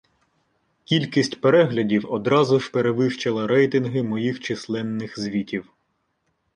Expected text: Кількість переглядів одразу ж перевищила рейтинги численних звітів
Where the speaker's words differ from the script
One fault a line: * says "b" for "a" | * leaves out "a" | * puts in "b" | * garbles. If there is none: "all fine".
* puts in "моїх"